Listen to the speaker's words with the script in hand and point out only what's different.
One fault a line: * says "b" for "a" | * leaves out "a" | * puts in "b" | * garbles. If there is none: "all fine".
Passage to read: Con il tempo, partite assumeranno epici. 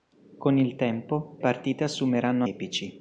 all fine